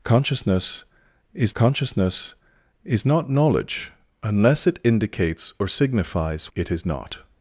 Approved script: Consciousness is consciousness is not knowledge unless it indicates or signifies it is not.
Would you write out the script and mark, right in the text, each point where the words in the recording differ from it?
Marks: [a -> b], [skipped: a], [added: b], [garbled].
Consciousness is consciousness is not knowledge unless it indicates or signifies it is not.